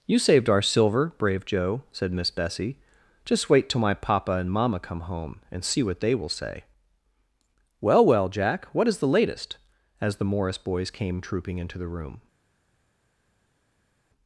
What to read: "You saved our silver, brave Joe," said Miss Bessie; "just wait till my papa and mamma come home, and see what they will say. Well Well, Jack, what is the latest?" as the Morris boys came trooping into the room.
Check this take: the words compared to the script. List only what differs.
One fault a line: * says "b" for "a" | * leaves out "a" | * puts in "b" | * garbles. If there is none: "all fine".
all fine